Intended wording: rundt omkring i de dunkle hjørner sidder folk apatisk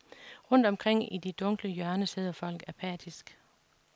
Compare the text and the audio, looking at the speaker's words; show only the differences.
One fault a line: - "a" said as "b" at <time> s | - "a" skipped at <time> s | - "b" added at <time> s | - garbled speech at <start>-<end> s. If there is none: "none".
none